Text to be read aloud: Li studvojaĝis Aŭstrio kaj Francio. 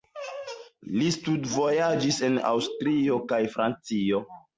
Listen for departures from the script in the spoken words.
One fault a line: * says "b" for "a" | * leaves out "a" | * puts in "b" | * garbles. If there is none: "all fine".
* puts in "en"